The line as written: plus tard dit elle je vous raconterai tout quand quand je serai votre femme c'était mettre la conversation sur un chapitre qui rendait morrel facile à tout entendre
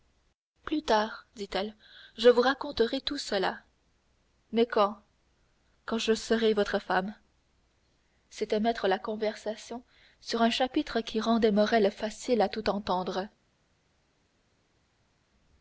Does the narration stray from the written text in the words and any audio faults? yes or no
yes